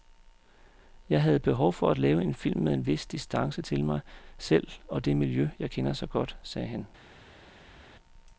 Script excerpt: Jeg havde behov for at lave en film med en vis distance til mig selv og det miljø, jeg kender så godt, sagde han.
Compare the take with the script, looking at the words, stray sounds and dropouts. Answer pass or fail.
pass